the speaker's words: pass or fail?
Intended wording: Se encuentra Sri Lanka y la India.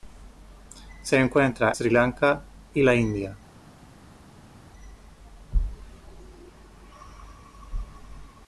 pass